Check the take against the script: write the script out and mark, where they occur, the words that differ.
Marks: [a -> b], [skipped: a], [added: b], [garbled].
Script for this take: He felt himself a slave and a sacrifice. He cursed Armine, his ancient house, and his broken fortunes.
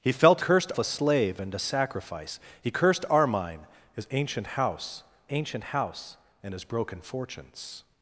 He felt [himself -> cursed] a slave and a sacrifice. He cursed Armine, his ancient house, [added: ancient house] and his broken fortunes.